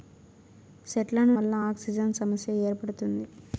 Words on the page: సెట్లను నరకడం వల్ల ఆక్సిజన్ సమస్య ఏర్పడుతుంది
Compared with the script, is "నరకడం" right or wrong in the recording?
wrong